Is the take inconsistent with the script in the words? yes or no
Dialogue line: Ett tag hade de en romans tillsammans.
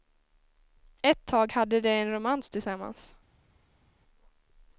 no